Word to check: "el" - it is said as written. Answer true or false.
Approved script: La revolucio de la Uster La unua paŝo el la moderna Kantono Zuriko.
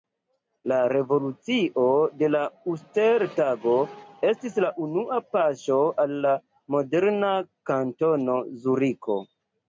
false